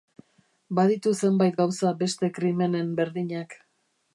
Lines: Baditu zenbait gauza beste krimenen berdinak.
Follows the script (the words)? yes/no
yes